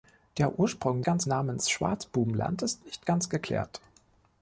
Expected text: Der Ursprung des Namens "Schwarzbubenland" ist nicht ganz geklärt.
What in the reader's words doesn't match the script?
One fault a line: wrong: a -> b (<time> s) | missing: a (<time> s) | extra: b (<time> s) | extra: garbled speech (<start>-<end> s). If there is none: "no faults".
wrong: des -> ganz (1.0 s)